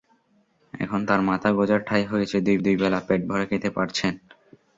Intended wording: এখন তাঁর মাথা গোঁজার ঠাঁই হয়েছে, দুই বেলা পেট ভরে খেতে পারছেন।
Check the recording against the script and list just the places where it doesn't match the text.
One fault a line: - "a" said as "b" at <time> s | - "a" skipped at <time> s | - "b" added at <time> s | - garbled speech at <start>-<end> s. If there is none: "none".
- "দুই" added at 2.6 s